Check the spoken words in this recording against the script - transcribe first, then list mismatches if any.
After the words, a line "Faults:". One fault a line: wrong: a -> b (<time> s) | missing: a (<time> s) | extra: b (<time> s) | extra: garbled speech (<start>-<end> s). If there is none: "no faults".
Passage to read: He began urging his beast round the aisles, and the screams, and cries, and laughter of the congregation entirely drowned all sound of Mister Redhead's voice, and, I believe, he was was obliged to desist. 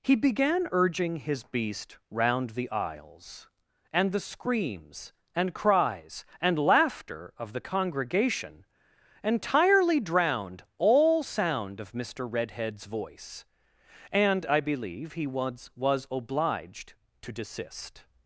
He began urging his beast round the aisles, and the screams, and cries, and laughter of the congregation entirely drowned all sound of Mister Redhead's voice, and, I believe, he was was obliged to desist.
Faults:
no faults